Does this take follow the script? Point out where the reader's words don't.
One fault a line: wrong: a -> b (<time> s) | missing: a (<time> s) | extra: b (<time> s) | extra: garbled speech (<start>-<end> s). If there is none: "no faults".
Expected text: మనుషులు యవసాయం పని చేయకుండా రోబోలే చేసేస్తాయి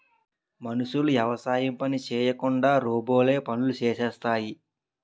extra: పనులు (3.5 s)